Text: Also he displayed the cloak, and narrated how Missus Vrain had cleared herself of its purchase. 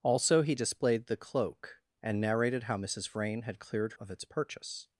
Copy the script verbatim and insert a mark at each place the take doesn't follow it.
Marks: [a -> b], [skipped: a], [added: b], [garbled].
Also he displayed the cloak, and narrated how Missus Vrain had cleared [skipped: herself] of its purchase.